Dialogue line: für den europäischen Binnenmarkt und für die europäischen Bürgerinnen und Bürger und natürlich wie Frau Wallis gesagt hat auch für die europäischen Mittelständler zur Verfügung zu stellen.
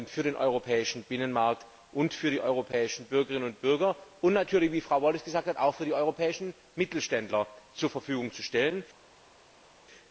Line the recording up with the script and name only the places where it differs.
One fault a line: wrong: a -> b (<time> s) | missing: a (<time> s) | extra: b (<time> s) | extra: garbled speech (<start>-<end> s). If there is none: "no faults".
no faults